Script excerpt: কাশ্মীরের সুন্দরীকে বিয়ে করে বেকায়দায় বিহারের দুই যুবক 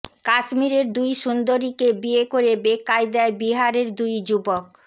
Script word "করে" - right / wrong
right